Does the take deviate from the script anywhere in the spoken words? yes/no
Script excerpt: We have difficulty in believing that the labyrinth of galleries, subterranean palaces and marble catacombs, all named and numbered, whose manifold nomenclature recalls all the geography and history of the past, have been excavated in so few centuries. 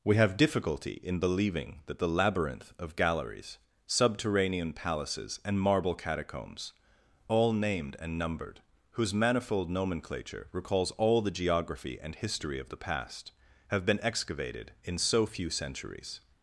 no